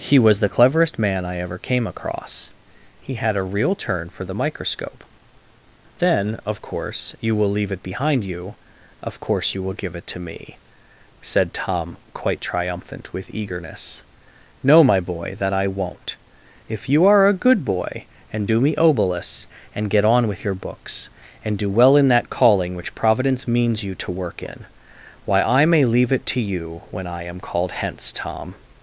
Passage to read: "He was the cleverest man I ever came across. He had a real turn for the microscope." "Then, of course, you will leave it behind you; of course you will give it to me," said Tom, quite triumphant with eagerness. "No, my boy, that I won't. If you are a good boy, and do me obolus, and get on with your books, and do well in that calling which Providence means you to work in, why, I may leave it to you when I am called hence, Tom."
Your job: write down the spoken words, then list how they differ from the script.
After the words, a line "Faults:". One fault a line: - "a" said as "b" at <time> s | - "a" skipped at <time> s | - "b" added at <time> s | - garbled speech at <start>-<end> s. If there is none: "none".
"He was the cleverest man I ever came across. He had a real turn for the microscope." "Then, of course, you will leave it behind you; of course you will give it to me," said Tom, quite triumphant with eagerness. "No, my boy, that I won't. If you are a good boy, and do me obolus, and get on with your books, and do well in that calling which Providence means you to work in, why, I may leave it to you when I am called hence, Tom."
Faults:
none